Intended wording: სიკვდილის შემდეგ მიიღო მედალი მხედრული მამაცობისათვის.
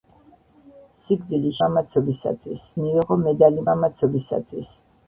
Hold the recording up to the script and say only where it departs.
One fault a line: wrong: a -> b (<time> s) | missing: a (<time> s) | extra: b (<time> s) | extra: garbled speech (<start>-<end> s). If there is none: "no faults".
wrong: შემდეგ -> მამაცობისათვის (1.7 s)
missing: მხედრული (3.7 s)